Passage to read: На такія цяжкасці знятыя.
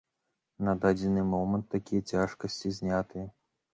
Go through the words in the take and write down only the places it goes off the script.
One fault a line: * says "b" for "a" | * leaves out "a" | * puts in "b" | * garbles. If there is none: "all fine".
* puts in "дадзены момант"